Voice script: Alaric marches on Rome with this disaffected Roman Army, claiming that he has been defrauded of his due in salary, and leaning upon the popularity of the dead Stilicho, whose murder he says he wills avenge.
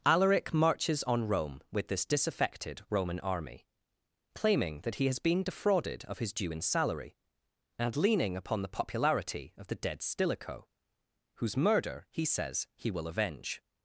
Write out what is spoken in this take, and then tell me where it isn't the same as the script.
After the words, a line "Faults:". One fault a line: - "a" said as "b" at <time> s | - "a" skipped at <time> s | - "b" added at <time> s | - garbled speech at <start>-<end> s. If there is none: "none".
Alaric marches on Rome with this disaffected Roman Army, claiming that he has been defrauded of his due in salary, and leaning upon the popularity of the dead Stilicho, whose murder he says he will avenge.
Faults:
- "wills" said as "will" at 12.9 s